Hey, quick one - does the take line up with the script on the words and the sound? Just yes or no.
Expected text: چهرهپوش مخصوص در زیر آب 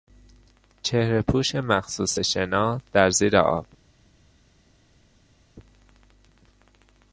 no